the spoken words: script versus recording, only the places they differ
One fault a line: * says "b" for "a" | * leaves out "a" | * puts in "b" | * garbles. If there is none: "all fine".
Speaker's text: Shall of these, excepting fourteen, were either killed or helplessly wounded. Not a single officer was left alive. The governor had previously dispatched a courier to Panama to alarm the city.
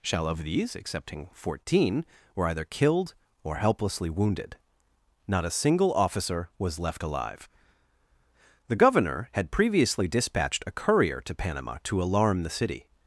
all fine